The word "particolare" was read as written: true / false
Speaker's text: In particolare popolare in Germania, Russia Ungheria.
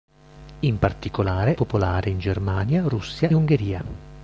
true